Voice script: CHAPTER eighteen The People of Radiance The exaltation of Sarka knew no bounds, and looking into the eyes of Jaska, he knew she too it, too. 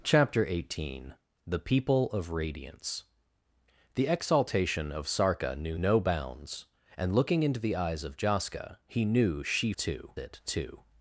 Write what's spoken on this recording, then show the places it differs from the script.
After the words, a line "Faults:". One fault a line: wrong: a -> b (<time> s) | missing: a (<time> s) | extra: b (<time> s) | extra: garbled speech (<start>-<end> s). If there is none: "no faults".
CHAPTER eighteen The People of Radiance The exaltation of Sarka knew no bounds, and looking into the eyes of Jaska, he knew she too it, too.
Faults:
no faults